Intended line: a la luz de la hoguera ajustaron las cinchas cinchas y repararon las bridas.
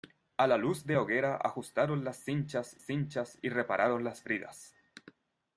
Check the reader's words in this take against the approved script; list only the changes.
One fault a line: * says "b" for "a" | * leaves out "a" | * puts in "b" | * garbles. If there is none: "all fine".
all fine